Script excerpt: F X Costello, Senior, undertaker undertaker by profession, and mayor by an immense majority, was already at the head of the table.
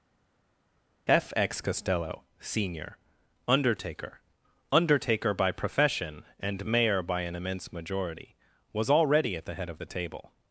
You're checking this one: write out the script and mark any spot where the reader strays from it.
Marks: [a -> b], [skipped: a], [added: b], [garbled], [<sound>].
F X Costello, Senior, undertaker undertaker by profession, and mayor by an immense majority, was already at the head of the table.